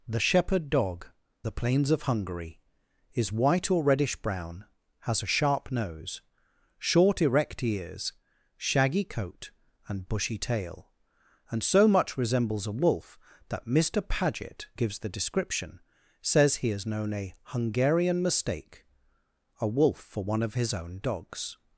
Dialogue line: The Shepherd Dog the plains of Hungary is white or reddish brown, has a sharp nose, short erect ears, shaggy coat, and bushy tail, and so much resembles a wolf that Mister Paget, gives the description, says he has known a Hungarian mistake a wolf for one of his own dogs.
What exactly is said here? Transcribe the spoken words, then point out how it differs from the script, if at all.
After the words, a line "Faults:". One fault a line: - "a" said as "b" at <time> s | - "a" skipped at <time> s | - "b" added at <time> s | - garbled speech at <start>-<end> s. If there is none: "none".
The Shepherd Dog the plains of Hungary is white or reddish brown, has a sharp nose, short erect ears, shaggy coat, and bushy tail, and so much resembles a wolf that Mister Paget, gives the description, says he has known a Hungarian mistake a wolf for one of his own dogs.
Faults:
none